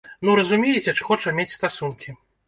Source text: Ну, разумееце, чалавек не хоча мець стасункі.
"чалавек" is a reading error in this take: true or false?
true